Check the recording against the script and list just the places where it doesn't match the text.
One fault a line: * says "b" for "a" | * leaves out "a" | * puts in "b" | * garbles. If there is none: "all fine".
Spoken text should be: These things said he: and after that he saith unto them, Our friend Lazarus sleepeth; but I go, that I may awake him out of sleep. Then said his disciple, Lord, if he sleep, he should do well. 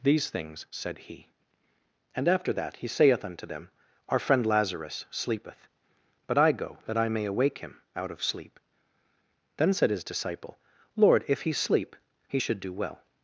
all fine